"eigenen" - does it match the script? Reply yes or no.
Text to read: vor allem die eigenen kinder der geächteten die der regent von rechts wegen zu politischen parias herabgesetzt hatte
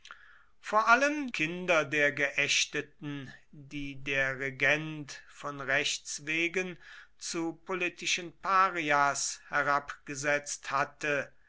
no